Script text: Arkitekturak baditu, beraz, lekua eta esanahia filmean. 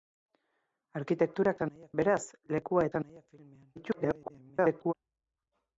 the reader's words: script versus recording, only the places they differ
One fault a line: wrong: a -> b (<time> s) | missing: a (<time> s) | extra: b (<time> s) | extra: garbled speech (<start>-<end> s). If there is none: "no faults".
wrong: baditu -> esanahia (1.6 s)
missing: eta (2.9 s)
extra: garbled speech (3.8-4.9 s)